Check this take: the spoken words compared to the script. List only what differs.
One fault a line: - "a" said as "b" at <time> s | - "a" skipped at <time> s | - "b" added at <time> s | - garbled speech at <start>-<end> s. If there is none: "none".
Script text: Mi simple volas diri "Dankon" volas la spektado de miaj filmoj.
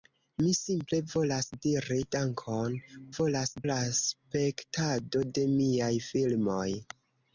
none